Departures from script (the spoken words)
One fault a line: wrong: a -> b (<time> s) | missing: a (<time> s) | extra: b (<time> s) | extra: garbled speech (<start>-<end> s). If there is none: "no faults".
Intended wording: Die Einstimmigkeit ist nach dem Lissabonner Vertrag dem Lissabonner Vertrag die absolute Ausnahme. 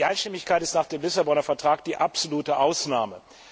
missing: dem Lissabonner Vertrag (1.8 s)